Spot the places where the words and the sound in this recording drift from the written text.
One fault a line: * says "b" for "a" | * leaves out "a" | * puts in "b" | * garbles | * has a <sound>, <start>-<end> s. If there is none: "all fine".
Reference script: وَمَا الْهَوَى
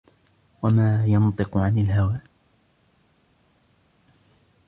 * puts in "يَنْطِقُ عَنِ"